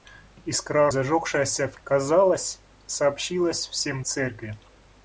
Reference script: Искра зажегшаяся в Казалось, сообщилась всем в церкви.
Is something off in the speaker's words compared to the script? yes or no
no